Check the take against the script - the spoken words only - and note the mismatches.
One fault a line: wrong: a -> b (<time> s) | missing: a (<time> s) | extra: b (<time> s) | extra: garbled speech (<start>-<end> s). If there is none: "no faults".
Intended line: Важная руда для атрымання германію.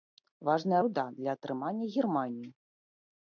no faults